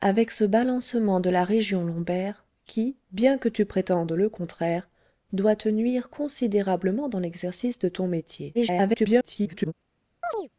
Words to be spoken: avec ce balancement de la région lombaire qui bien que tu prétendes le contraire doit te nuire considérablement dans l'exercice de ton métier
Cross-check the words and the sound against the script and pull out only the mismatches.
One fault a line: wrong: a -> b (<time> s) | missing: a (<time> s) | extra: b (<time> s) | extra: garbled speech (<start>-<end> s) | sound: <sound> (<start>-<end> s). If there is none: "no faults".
extra: garbled speech (8.5-9.7 s)
sound: chirp (10.2-10.5 s)